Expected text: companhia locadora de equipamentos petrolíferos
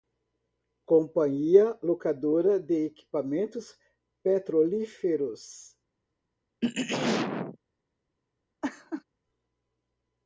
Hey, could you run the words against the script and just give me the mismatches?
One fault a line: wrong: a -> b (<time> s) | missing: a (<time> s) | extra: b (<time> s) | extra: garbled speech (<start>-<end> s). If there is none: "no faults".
no faults